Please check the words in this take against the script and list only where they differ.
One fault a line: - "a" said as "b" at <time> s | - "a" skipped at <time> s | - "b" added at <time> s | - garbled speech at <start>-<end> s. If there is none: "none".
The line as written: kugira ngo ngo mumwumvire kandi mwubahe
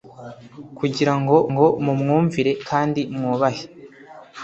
none